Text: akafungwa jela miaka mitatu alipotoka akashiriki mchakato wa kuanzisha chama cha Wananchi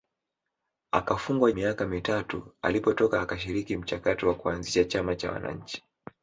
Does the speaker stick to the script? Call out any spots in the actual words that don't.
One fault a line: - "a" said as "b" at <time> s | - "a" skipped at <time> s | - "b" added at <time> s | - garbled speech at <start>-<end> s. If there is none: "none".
- "jela" skipped at 1.5 s